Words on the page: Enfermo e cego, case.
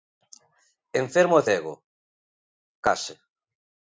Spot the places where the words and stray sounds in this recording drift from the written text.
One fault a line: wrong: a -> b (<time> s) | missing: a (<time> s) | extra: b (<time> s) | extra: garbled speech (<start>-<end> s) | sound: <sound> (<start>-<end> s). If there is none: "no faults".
no faults